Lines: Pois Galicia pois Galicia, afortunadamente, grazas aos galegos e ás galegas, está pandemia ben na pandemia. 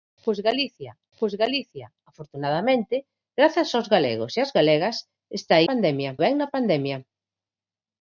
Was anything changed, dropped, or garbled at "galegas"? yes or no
no